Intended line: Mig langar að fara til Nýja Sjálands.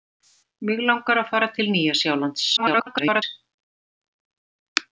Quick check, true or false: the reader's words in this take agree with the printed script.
false